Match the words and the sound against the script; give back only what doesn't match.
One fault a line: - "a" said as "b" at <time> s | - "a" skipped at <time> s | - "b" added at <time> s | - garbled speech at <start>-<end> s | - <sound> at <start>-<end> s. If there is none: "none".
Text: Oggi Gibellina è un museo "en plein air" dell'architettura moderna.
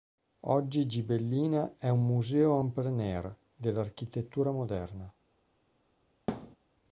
- thud at 6.3-6.6 s